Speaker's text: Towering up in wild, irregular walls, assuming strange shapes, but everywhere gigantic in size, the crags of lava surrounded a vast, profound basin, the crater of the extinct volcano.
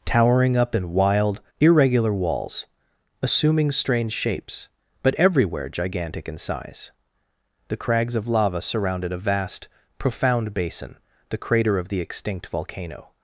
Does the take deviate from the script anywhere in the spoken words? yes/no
no